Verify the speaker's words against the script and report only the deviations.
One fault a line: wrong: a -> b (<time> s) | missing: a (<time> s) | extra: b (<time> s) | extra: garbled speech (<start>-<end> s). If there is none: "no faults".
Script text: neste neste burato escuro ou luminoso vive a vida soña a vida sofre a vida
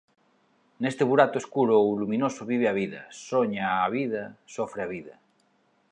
missing: neste (1.0 s)